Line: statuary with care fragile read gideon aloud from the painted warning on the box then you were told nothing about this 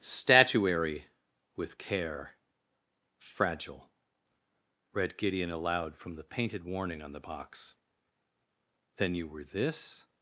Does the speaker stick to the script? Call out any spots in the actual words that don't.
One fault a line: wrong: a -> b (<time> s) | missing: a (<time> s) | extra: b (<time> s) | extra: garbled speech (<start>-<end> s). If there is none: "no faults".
missing: told nothing about (9.4 s)